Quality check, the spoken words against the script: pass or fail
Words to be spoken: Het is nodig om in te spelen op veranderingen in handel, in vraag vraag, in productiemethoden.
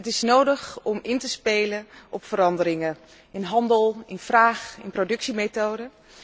fail